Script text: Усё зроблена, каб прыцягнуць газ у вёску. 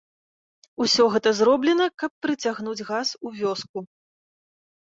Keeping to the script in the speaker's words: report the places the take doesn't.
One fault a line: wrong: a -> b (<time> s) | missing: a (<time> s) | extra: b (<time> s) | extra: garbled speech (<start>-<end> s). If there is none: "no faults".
extra: гэта (1.1 s)